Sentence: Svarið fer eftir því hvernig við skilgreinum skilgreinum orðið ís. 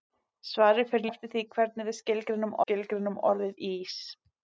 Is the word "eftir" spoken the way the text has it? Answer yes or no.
yes